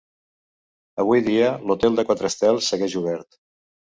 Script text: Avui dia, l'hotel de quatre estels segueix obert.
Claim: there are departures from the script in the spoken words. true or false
false